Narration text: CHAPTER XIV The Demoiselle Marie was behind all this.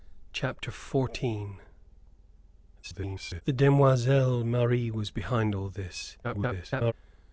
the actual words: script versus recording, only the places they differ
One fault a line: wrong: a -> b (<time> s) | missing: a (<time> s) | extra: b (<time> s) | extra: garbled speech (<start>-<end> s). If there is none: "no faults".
extra: garbled speech (2.8-3.4 s)
extra: garbled speech (6.2-6.9 s)